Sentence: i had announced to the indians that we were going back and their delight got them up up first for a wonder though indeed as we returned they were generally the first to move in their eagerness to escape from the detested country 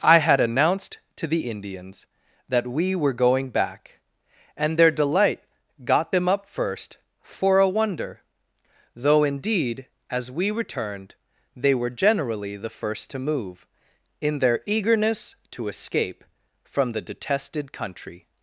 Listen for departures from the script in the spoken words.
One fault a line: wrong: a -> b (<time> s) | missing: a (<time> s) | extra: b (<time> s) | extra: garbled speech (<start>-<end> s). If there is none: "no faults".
missing: up (6.5 s)